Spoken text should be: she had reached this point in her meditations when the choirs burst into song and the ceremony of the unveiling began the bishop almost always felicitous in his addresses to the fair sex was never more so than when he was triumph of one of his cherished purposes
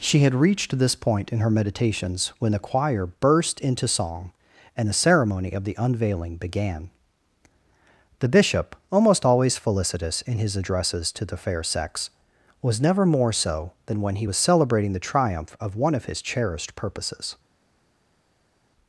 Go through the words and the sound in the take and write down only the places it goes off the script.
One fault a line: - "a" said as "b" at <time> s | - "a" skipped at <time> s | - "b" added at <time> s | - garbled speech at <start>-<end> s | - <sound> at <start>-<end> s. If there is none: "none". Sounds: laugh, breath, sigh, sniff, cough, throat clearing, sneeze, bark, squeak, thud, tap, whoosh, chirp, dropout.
- "choirs" said as "choir" at 2.6 s
- "celebrating the" added at 14.4 s